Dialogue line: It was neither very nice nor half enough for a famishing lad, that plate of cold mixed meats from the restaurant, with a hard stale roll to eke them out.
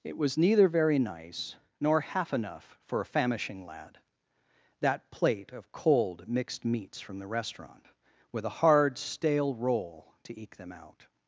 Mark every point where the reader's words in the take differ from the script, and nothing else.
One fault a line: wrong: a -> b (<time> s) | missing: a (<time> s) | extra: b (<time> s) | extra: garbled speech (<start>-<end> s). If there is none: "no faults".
no faults